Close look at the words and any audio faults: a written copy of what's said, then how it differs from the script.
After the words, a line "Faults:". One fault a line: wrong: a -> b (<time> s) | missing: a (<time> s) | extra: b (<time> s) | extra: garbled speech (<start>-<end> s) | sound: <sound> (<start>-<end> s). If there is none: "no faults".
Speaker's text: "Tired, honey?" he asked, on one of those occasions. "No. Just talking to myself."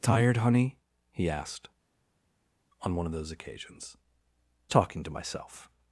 "Tired, honey?" he asked, on one of those occasions. "Talking to myself."
Faults:
missing: No Just (4.0 s)